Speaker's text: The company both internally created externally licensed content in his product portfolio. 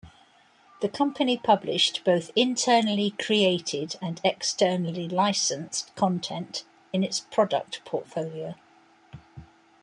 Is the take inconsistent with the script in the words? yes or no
yes